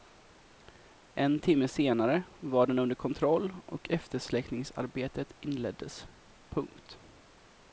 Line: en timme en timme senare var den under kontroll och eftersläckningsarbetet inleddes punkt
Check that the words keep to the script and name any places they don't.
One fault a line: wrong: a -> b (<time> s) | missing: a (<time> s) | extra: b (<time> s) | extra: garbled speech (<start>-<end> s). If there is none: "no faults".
missing: en timme (1.7 s)